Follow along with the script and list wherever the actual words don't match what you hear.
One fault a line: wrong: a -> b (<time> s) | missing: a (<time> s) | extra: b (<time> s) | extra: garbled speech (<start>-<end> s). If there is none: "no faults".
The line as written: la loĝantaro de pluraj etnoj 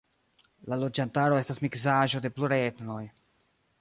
extra: estas miksaĵo (1.4 s)